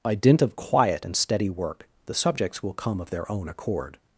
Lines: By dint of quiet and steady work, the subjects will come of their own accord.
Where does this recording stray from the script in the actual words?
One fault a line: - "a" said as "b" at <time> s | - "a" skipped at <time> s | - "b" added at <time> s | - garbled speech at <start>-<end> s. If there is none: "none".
none